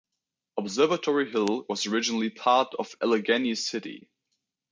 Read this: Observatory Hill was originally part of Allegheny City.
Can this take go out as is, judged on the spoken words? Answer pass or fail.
pass